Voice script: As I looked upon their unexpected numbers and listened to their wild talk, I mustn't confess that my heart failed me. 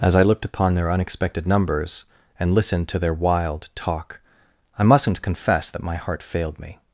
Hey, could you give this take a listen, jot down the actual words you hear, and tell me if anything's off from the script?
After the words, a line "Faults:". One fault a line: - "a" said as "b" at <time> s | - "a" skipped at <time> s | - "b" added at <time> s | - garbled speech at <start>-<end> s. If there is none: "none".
As I looked upon their unexpected numbers and listened to their wild talk, I mustn't confess that my heart failed me.
Faults:
none